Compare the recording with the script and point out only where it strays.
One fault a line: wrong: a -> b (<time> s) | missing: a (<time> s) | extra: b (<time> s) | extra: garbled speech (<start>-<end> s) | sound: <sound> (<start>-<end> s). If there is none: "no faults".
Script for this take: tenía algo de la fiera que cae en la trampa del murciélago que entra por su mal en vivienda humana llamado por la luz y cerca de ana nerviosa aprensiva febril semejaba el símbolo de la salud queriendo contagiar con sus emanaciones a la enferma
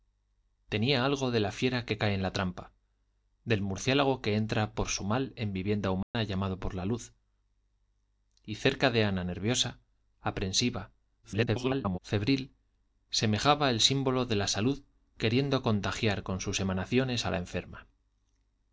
sound: dropout (6.0-6.1 s)
extra: garbled speech (11.2-12.0 s)